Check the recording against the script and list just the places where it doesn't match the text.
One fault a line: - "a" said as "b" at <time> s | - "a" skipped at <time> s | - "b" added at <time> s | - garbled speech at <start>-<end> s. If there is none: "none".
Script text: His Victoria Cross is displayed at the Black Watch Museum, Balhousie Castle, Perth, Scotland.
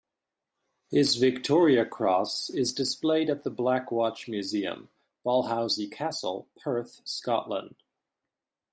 none